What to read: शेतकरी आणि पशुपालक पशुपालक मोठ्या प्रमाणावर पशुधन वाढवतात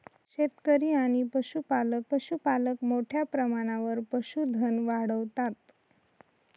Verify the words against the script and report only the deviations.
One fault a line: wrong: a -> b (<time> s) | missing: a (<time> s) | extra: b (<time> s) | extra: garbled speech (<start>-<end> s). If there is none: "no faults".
no faults